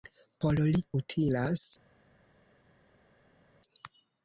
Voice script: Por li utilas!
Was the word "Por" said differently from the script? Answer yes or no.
no